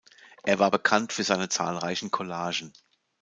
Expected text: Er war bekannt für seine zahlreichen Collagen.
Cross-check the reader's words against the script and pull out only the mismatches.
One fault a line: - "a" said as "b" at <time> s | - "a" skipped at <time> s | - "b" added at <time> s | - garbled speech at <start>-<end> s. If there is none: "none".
none